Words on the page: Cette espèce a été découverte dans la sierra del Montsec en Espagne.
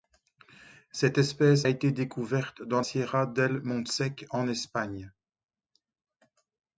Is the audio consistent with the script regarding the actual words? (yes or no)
no